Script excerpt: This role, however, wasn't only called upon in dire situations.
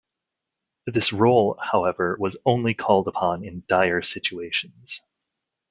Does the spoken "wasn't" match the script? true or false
false